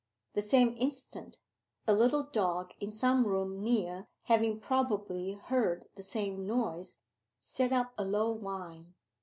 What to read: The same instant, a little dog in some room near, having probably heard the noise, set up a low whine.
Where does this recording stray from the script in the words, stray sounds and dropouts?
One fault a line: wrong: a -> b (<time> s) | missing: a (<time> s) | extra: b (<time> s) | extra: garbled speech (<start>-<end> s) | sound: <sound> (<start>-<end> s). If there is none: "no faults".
extra: same (6.0 s)